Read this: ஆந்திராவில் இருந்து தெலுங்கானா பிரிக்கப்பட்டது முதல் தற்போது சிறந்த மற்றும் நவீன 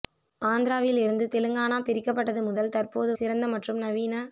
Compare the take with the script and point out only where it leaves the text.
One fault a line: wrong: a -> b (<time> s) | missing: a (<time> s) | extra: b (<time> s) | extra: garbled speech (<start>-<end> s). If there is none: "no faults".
no faults